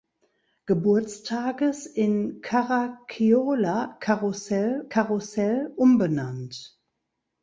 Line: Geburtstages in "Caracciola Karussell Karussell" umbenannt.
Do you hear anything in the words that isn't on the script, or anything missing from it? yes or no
no